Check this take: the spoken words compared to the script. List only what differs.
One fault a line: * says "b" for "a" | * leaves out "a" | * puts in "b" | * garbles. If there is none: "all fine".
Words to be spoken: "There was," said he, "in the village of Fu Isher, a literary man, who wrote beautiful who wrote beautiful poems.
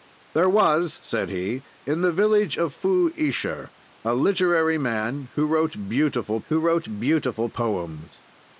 all fine